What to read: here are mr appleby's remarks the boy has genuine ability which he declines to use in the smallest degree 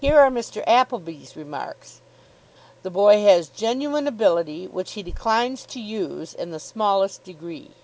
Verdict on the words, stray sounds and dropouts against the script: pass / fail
pass